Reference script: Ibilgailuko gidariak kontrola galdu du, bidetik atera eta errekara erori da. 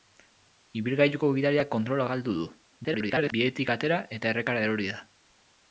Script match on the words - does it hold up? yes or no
no